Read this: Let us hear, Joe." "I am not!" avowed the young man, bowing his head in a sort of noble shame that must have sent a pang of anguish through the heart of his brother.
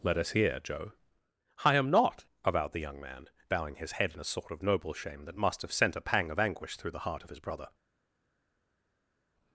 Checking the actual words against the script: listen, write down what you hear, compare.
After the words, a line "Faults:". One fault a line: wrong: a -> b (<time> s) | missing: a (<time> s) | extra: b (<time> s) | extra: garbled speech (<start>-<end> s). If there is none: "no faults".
Let us hear, Joe." "I am not!" avowed the young man, bowing his head in a sort of noble shame that must have sent a pang of anguish through the heart of his brother.
Faults:
no faults